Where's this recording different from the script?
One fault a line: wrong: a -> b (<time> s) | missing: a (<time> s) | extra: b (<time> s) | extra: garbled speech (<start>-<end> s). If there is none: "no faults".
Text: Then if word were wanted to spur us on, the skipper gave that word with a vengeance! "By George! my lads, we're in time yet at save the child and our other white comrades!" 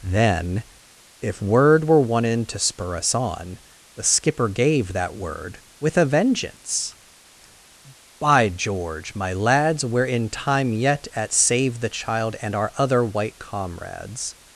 no faults